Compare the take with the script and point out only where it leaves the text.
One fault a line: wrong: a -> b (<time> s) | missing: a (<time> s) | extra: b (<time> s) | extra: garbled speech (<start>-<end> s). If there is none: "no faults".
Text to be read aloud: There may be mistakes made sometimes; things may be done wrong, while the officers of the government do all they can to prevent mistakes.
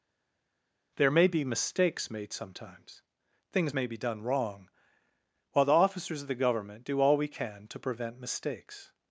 wrong: they -> we (7.2 s)